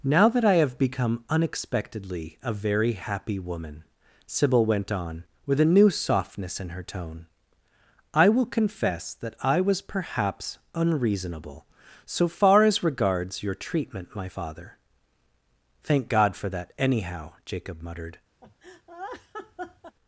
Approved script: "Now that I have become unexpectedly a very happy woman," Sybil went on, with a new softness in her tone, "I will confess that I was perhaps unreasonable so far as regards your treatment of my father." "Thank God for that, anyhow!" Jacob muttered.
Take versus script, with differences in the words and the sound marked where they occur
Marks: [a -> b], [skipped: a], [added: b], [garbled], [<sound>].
"Now that I have become unexpectedly a very happy woman," Sybil went on, with a new softness in her tone, "I will confess that I was perhaps unreasonable so far as regards your treatment [skipped: of] my father." "Thank God for that, anyhow!" Jacob muttered. [laugh]